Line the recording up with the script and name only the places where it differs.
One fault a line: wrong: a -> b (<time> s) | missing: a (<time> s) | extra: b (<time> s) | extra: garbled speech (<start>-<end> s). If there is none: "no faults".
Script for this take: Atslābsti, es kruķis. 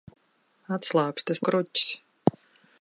no faults